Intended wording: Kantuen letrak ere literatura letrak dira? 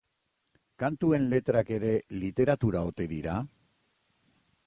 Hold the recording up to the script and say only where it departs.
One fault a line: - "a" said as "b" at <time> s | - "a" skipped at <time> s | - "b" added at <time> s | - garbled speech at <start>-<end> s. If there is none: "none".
- "letrak" said as "ote" at 2.9 s